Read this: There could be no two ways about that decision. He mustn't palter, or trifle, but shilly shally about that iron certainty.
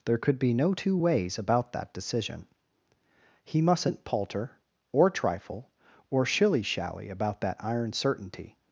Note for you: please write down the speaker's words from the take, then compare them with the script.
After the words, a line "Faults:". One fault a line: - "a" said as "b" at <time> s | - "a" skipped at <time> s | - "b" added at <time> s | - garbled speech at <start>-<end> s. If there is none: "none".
There could be no two ways about that decision. He mustn't palter, or trifle, or shilly shally about that iron certainty.
Faults:
- "but" said as "or" at 6.1 s